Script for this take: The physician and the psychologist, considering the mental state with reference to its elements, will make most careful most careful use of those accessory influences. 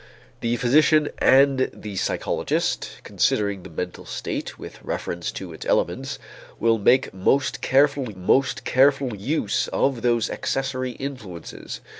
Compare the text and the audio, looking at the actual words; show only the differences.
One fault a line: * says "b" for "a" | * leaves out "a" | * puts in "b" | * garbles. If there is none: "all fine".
all fine